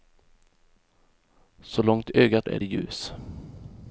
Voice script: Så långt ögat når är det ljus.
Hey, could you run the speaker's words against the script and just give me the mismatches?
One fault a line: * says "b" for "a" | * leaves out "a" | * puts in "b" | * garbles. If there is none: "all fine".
* leaves out "når"